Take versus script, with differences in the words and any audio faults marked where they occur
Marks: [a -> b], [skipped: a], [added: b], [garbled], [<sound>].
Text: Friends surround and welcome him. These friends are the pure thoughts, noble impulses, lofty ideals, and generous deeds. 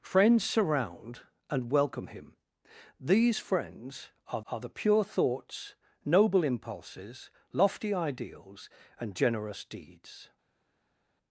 Friends surround and welcome him. These friends are [added: are] the pure thoughts, noble impulses, lofty ideals, and generous deeds.